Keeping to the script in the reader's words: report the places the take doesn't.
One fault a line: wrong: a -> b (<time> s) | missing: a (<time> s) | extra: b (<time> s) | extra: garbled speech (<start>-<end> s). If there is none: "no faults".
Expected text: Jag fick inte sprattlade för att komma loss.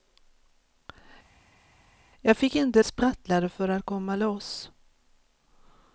no faults